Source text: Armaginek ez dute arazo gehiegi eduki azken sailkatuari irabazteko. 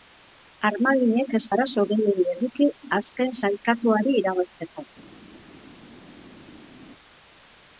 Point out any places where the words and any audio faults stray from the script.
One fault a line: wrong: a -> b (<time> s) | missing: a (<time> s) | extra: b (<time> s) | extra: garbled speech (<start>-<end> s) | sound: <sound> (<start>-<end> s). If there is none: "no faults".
missing: dute (1.4 s)